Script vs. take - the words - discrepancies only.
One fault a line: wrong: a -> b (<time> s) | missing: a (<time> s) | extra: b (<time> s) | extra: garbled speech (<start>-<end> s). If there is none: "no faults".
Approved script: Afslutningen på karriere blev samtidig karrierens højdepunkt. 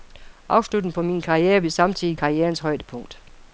extra: min (1.0 s)